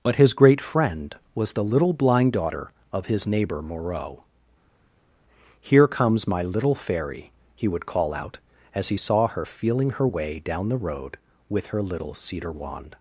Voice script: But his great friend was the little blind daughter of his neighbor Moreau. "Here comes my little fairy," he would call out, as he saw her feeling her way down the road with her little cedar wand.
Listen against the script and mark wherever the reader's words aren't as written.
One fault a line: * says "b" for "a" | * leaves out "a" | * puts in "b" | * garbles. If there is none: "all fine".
all fine